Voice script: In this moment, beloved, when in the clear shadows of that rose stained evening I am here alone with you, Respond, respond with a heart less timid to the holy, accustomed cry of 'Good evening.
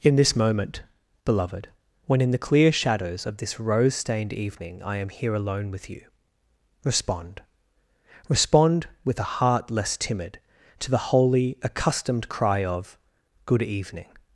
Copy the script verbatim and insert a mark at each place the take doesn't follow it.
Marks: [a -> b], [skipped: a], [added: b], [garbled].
In this moment, beloved, when in the clear shadows of [that -> this] rose stained evening I am here alone with you, Respond, respond with a heart less timid to the holy, accustomed cry of 'Good evening.